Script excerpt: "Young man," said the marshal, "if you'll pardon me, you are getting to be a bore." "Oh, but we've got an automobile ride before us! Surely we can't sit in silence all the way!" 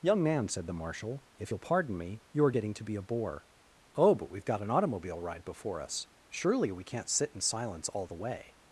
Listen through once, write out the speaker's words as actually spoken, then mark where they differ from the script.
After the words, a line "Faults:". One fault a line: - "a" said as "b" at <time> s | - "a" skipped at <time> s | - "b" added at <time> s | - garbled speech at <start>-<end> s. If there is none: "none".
"Young man," said the marshal, "if you'll pardon me, you are getting to be a bore." "Oh, but we've got an automobile ride before us! Surely we can't sit in silence all the way!"
Faults:
none